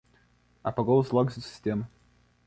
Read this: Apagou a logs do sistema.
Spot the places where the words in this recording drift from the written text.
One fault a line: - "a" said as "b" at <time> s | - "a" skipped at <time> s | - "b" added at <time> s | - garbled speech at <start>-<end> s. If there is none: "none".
- "a" said as "os" at 1.0 s